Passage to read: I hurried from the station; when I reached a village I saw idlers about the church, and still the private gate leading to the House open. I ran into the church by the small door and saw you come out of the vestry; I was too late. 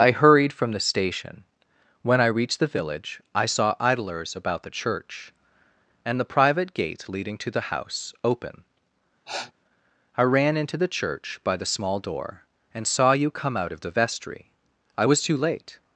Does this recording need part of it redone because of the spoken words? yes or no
yes